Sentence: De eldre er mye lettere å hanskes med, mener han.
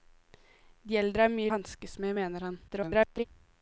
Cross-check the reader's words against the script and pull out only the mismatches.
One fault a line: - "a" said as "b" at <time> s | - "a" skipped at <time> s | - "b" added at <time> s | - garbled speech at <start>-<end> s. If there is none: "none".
- "lettere" skipped at 1.5 s
- garbled speech at 2.7-3.2 s